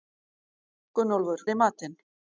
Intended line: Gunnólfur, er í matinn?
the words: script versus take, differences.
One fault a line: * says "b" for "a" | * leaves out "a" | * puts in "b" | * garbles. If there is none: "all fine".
all fine